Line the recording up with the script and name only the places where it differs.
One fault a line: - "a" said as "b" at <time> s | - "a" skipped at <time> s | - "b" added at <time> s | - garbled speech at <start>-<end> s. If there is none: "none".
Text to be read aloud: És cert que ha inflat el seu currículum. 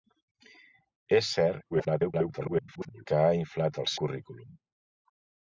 - garbled speech at 1.7-3.0 s
- "seu" skipped at 3.9 s